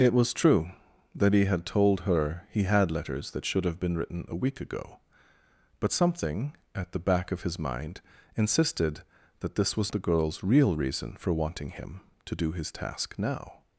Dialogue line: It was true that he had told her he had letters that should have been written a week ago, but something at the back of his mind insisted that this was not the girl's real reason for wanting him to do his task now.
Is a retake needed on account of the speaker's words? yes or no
yes